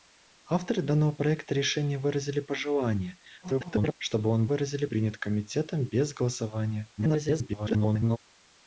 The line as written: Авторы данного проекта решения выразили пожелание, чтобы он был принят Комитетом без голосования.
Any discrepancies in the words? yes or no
yes